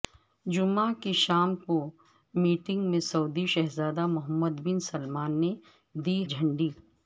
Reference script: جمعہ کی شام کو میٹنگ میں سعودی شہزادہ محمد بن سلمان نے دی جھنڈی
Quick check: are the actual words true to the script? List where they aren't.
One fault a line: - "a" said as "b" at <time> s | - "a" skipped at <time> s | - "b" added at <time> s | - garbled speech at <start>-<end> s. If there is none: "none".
none